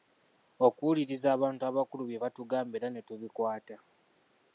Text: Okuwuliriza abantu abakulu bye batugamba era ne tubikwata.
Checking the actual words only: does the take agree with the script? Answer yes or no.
yes